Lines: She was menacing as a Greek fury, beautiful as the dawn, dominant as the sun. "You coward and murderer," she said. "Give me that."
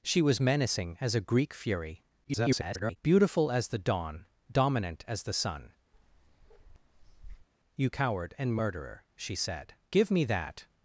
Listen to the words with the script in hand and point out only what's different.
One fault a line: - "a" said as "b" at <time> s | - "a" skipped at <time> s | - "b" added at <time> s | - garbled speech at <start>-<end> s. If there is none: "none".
- garbled speech at 2.2-3.0 s